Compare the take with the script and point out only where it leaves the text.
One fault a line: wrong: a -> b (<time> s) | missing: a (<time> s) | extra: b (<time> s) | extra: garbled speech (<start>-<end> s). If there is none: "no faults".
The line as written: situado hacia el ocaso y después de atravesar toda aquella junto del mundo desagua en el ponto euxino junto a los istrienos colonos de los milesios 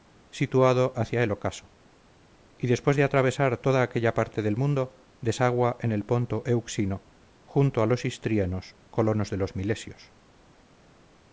wrong: junto -> parte (4.2 s)